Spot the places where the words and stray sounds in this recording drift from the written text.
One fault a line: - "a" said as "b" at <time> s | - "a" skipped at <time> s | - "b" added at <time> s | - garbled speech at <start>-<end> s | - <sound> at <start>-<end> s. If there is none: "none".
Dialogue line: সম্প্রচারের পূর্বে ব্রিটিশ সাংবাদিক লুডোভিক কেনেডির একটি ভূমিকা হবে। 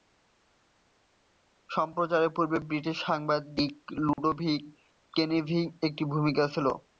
- dropout at 4.1-4.2 s
- "হবে" said as "ছিল" at 6.5 s